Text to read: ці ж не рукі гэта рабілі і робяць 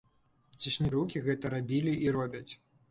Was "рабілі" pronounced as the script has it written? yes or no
yes